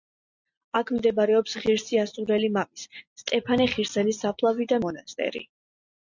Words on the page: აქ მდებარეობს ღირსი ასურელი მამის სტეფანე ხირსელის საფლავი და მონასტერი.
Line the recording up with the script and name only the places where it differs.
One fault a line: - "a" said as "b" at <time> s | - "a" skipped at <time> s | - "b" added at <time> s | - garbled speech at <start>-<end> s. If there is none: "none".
none